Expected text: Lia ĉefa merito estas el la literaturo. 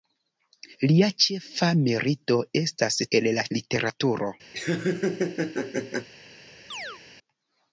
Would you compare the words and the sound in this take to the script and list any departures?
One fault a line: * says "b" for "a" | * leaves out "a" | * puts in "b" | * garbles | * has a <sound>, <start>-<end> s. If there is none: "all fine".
* has a laugh, 4.5-6.1 s
* has a chirp, 6.7-7.0 s